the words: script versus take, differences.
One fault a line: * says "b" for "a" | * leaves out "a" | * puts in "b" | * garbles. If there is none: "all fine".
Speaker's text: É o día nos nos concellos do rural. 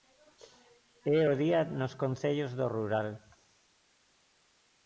* leaves out "nos"